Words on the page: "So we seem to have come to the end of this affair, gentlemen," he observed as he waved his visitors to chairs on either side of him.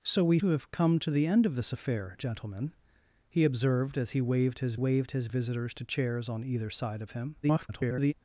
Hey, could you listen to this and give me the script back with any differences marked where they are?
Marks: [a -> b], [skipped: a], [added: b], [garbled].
"So we [skipped: seem] to have come to the end of this affair, gentlemen," he observed as he waved his [added: waved his] visitors to chairs on either side of him. [garbled]